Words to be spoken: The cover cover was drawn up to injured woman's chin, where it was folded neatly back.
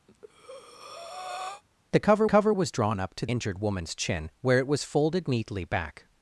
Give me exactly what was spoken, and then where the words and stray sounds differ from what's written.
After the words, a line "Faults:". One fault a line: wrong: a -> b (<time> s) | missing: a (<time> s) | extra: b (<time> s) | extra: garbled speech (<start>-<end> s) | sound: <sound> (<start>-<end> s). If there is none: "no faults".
The cover cover was drawn up to injured woman's chin, where it was folded neatly back.
Faults:
sound: breath (0.1-1.6 s)